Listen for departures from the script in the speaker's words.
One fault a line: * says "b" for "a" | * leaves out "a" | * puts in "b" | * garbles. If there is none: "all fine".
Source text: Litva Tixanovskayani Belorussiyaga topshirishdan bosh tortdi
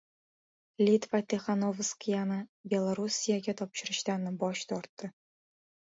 all fine